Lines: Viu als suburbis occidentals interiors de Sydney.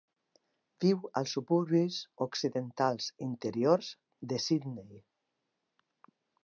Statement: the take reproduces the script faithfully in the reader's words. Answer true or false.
true